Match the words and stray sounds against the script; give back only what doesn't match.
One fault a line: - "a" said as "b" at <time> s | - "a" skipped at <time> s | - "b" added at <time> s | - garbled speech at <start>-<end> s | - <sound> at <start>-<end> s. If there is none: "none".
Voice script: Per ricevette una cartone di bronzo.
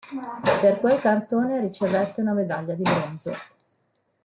- "quel cartone" added at 0.8 s
- "cartone" said as "medaglia" at 2.3 s